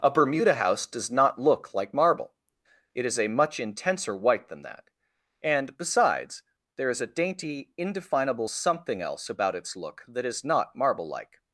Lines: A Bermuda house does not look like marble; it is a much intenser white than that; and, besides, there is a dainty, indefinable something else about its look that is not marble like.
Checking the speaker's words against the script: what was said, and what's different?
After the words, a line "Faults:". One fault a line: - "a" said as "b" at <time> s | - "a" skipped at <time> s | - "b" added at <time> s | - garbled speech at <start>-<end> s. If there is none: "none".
A Bermuda house does not look like marble; it is a much intenser white than that; and, besides, there is a dainty, indefinable something else about its look that is not marble like.
Faults:
none